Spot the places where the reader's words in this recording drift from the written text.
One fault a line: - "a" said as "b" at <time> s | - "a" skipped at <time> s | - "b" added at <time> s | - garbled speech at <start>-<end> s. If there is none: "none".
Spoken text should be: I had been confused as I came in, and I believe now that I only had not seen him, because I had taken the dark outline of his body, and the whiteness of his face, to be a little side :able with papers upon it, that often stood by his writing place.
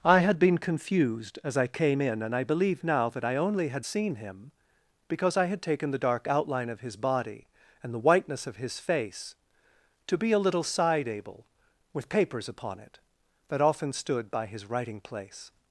- "not" skipped at 3.9 s